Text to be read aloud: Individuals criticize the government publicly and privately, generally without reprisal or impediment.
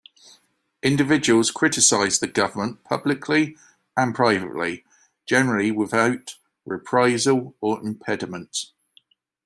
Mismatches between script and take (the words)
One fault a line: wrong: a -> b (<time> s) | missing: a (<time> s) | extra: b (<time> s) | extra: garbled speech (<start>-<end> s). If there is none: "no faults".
no faults